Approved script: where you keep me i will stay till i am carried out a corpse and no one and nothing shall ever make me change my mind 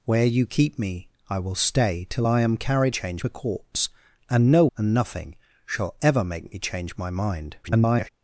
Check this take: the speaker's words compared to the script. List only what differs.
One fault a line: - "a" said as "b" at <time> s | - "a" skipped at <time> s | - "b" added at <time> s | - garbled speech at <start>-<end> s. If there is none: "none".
- "out" said as "change" at 2.9 s
- "one" skipped at 4.7 s
- garbled speech at 7.6-8.1 s